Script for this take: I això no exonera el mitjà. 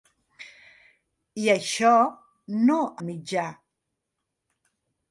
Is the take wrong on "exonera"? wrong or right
wrong